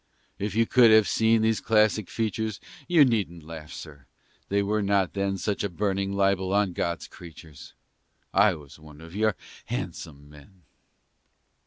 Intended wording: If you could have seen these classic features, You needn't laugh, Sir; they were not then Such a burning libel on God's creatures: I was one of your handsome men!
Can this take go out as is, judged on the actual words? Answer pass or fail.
pass